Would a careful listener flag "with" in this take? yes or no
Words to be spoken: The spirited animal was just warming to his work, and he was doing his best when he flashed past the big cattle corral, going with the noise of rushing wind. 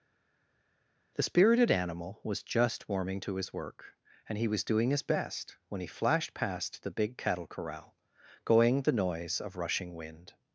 yes